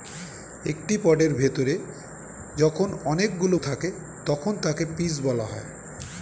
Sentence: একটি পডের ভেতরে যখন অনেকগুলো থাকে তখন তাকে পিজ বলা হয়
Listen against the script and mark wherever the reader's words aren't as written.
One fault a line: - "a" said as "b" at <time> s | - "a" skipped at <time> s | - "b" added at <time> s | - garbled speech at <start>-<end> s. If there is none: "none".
none